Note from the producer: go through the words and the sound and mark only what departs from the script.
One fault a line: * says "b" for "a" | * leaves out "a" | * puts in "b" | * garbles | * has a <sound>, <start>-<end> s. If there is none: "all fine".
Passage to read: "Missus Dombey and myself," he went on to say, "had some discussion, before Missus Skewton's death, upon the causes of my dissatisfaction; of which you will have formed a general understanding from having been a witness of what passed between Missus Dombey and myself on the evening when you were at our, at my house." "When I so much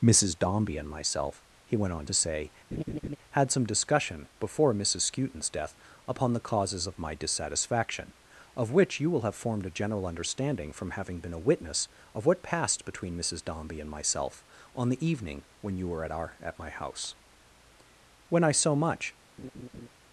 * has a laugh, 2.7-3.2 s
* has a laugh, 19.4-19.9 s